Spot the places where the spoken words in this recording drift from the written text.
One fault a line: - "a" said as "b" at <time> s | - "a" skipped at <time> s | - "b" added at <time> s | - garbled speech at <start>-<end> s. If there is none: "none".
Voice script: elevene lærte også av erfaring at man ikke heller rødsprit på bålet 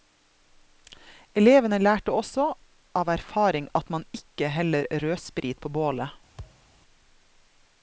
none